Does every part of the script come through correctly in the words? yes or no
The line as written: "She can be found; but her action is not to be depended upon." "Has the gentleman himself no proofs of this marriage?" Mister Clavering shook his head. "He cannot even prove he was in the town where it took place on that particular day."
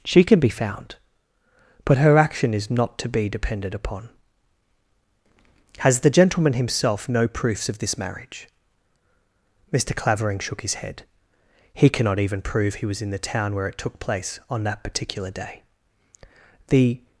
no